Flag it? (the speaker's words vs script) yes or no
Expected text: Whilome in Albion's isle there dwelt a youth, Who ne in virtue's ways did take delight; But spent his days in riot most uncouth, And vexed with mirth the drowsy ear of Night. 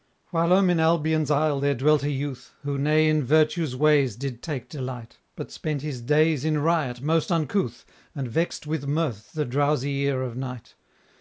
no